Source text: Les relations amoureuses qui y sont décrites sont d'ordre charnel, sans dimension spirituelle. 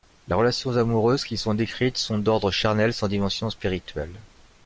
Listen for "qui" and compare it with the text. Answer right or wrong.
right